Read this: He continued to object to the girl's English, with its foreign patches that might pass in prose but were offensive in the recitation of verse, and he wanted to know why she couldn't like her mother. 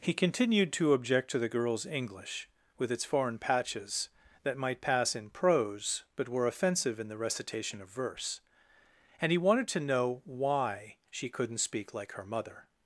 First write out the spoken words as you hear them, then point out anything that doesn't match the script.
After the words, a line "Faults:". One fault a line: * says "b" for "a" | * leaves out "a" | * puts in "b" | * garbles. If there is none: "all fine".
He continued to object to the girl's English, with its foreign patches that might pass in prose but were offensive in the recitation of verse, and he wanted to know why she couldn't speak like her mother.
Faults:
* puts in "speak"